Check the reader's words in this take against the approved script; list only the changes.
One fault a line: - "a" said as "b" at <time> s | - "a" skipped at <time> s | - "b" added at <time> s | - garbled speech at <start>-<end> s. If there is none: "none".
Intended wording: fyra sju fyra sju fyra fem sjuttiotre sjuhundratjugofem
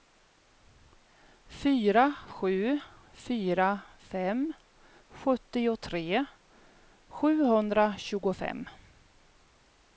- "sju fyra" skipped at 3.7 s